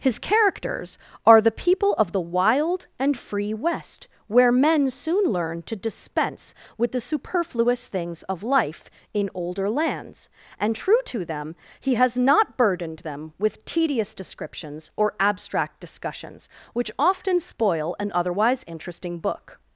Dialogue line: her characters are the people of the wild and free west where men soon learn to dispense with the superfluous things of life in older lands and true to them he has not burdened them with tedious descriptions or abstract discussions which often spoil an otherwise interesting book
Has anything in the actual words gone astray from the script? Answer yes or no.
yes